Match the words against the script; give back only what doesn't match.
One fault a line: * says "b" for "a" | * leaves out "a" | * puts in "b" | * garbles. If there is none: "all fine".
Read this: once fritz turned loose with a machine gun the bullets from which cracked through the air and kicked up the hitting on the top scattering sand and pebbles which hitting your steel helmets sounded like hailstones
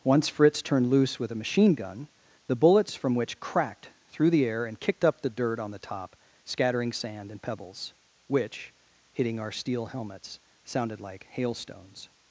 * says "dirt" for "hitting"
* says "our" for "your"